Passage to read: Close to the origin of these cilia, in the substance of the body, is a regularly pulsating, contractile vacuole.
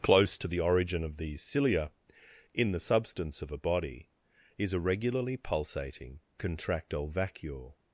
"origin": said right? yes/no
yes